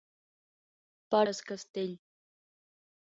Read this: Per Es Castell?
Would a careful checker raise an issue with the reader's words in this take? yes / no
no